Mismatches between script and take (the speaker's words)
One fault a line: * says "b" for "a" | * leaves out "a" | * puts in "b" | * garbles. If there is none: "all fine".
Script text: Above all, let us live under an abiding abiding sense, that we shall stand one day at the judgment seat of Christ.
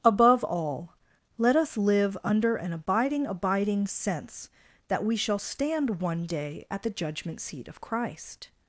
all fine